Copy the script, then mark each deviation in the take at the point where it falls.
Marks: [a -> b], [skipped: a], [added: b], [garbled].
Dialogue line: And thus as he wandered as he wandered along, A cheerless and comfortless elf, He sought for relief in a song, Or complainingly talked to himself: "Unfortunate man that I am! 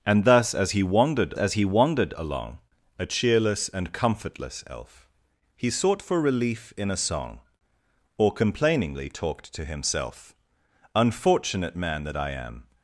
And thus as he wandered as he wandered along, A cheerless and comfortless elf, He sought for relief in a song, Or complainingly talked to himself: "Unfortunate man that I am!